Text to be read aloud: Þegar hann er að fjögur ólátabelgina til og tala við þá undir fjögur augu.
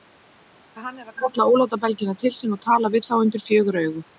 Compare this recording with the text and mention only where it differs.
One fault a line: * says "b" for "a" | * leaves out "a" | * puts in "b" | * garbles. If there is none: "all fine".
* says "kalla" for "fjögur"
* puts in "sín"